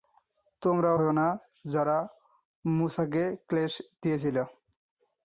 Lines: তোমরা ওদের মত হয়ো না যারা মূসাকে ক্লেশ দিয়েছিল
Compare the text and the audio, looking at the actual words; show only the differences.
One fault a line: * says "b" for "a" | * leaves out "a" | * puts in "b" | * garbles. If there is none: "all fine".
* leaves out "ওদের মত"